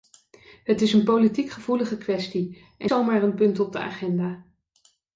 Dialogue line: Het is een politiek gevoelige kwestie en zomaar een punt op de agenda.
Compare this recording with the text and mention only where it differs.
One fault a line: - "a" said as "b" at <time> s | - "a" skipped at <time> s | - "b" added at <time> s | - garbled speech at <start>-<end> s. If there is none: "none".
none